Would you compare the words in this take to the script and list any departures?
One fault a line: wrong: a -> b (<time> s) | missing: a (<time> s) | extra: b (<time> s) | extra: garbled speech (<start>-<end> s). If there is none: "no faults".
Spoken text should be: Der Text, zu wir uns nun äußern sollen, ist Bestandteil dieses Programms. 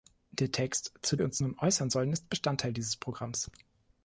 no faults